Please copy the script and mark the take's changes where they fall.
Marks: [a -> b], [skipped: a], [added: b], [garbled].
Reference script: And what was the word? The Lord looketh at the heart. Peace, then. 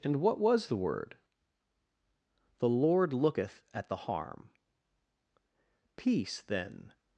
And what was the word? The Lord looketh at the [heart. -> harm] Peace, then.